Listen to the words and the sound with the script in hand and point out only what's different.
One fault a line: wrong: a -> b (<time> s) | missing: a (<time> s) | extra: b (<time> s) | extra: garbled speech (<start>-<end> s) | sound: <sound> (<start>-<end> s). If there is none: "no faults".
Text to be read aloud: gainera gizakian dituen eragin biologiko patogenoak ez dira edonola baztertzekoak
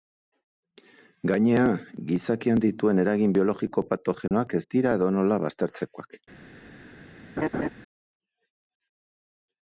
sound: dropout (4.3-4.3 s)
sound: laugh (7.4-7.7 s)